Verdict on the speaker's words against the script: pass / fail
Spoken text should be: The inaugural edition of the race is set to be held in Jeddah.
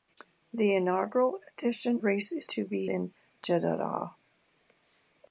fail